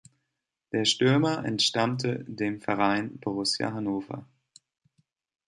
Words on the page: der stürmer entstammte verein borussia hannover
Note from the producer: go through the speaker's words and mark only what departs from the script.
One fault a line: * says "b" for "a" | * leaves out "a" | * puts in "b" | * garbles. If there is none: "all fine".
* puts in "dem"